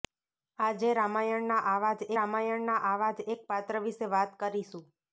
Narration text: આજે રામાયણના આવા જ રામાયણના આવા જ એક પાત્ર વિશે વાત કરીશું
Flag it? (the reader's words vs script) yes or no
no